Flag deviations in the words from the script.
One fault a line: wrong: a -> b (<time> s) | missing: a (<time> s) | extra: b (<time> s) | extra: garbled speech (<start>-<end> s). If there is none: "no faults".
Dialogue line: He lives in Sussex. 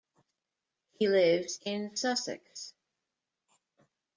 no faults